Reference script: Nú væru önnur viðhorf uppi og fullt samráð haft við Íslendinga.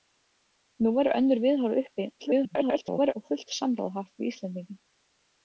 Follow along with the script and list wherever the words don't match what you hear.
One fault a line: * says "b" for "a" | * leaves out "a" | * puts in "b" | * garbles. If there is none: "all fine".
* garbles